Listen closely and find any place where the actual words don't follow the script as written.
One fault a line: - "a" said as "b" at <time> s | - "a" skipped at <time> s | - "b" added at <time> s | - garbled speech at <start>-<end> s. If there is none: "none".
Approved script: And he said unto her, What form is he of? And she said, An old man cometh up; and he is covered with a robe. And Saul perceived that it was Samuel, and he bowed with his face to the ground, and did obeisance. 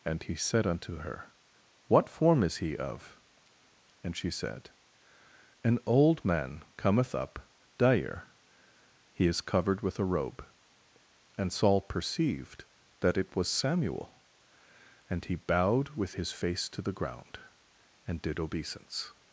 - "and" said as "dire" at 7.8 s